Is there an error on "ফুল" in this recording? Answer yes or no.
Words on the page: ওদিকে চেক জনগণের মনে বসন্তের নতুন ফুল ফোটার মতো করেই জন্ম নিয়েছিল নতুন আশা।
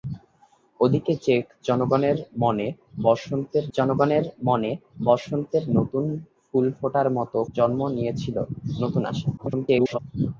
no